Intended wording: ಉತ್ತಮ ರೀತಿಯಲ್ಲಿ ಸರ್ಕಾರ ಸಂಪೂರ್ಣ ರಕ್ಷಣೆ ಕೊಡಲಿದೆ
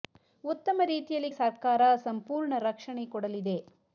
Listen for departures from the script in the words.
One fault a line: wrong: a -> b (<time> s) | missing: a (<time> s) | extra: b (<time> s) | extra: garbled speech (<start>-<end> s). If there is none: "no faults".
no faults